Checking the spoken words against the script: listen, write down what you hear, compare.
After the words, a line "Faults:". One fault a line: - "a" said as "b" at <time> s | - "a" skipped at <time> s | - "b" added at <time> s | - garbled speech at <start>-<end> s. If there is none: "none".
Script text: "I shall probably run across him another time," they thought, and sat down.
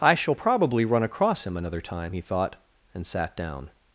"I shall probably run across him another time," he thought, and sat down.
Faults:
- "they" said as "he" at 2.1 s